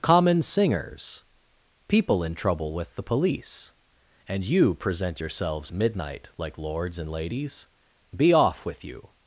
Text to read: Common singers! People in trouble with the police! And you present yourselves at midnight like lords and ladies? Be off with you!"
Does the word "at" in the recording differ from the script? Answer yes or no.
yes